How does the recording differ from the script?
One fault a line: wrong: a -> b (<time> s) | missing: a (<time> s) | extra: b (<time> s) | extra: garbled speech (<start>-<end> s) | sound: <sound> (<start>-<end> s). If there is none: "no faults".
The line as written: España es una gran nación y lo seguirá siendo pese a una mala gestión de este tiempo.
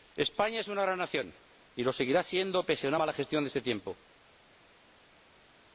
no faults